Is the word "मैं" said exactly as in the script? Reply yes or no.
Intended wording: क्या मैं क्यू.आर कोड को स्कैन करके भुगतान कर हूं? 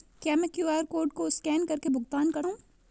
yes